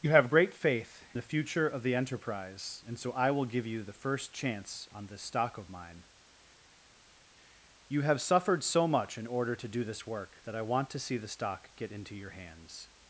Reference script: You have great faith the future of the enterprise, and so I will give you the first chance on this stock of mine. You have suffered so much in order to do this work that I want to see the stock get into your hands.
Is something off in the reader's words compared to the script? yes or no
no